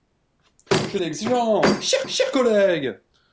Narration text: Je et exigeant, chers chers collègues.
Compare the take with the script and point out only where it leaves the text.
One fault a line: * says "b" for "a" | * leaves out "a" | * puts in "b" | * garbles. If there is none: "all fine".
all fine